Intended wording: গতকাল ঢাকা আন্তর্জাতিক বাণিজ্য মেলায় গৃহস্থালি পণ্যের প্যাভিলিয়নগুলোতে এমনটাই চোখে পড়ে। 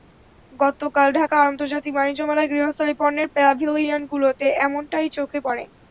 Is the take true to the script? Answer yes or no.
yes